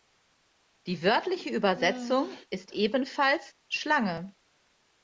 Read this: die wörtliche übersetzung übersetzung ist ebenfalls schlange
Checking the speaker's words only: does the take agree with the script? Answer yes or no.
no